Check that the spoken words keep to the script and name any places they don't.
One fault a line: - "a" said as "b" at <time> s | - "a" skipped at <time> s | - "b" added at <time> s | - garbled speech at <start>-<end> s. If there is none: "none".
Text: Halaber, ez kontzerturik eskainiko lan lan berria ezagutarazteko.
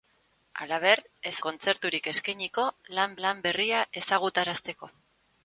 none